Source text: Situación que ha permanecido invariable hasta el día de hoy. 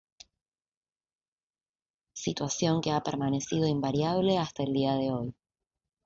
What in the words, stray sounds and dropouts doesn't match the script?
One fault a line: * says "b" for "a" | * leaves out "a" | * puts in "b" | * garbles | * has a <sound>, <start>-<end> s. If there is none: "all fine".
all fine